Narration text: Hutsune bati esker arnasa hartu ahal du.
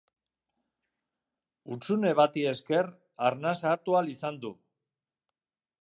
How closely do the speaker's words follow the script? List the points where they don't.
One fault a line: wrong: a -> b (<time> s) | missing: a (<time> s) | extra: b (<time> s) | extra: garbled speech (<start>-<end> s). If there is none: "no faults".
extra: izan (4.2 s)